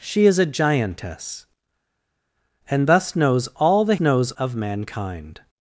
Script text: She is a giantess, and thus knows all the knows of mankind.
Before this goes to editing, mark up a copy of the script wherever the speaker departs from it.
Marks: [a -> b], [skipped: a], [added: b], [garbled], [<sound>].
She is a giantess, and thus knows all the knows of mankind.